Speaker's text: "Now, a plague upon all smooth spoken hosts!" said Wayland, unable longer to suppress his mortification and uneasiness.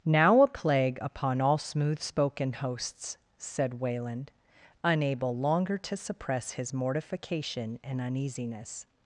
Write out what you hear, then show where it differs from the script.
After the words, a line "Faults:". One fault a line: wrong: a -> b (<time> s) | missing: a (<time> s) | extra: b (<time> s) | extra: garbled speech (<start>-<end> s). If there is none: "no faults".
"Now, a plague upon all smooth spoken hosts!" said Wayland, unable longer to suppress his mortification and uneasiness.
Faults:
no faults